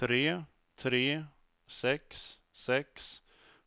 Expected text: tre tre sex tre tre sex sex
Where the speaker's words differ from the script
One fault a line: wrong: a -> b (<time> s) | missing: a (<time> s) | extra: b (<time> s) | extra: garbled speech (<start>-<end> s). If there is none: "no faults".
missing: tre tre sex (2.4 s)